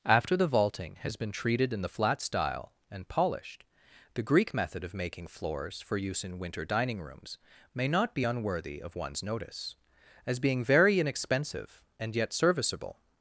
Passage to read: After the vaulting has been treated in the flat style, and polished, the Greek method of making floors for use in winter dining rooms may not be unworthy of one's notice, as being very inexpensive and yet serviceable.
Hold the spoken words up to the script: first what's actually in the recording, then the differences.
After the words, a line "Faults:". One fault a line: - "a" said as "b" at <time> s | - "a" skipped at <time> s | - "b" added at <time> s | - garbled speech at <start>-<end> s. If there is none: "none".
After the vaulting has been treated in the flat style, and polished, the Greek method of making floors for use in winter dining rooms may not be unworthy of one's notice, as being very inexpensive and yet serviceable.
Faults:
none